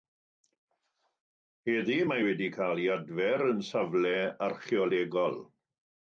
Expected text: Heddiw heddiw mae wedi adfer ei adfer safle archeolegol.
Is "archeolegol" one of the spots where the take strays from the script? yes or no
no